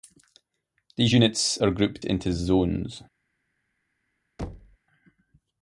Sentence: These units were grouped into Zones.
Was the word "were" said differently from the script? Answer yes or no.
yes